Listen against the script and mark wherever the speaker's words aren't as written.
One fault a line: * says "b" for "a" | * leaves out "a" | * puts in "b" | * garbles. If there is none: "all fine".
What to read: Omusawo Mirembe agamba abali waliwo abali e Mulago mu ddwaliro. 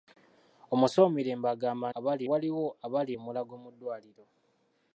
all fine